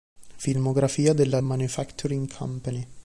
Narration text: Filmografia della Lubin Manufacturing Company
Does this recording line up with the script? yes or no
no